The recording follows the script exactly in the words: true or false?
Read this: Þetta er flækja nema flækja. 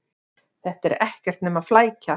false